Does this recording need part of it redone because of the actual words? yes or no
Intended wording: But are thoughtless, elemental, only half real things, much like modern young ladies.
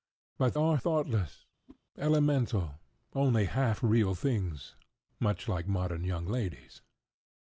no